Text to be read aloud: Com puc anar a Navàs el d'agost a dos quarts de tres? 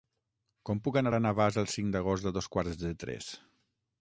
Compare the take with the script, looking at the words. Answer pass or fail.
fail